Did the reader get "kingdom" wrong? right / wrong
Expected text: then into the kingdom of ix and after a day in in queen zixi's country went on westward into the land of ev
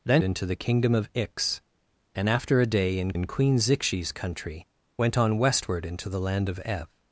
right